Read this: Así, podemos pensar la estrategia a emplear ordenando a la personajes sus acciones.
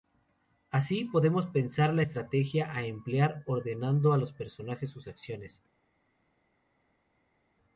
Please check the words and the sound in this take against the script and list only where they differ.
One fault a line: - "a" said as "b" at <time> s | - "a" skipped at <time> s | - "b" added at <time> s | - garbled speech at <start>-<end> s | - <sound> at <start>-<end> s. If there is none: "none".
- "la" said as "los" at 4.2 s